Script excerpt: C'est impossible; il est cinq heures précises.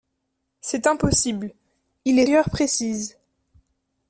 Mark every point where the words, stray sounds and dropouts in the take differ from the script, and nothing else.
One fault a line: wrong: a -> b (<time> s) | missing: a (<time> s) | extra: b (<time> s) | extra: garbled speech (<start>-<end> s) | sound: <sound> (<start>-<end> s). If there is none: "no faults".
missing: cinq (2.2 s)